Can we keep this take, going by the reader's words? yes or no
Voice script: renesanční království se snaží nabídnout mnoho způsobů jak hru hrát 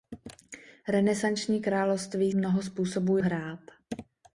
no